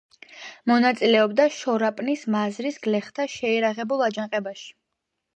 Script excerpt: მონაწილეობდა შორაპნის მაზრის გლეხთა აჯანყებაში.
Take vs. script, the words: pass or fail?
fail